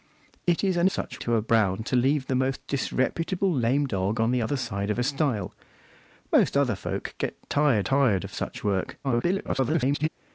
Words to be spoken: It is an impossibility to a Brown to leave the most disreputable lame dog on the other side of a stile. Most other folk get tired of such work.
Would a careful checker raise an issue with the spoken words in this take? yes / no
yes